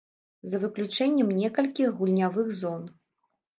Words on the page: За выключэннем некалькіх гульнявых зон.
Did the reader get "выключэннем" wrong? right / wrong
right